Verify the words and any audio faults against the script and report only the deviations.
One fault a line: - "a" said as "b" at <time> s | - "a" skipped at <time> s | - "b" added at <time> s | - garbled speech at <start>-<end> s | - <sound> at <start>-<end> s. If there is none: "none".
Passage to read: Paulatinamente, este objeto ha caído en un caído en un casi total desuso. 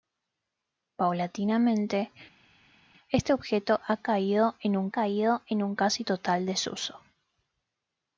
none